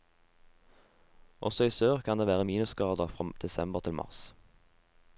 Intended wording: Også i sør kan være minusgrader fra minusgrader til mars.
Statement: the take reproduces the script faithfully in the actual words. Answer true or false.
false